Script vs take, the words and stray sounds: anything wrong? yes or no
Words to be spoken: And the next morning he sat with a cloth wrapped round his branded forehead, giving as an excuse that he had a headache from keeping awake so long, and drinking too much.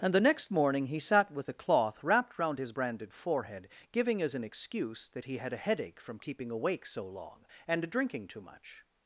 no